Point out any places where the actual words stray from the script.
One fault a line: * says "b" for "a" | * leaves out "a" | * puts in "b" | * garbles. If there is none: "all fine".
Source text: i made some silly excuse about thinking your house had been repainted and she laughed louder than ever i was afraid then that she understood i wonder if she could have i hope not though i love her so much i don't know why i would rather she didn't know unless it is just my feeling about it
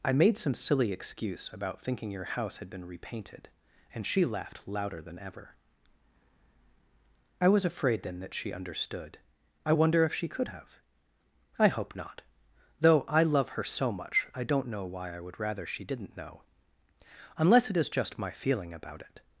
all fine